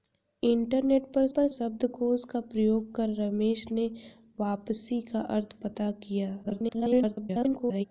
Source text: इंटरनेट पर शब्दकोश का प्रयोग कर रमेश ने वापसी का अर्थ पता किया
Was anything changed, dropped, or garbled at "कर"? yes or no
no